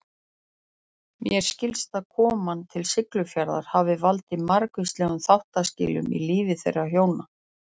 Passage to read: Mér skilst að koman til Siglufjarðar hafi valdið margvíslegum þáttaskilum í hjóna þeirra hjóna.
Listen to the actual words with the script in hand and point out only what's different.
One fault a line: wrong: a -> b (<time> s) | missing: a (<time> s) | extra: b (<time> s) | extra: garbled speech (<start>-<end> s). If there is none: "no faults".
wrong: hjóna -> lífi (6.3 s)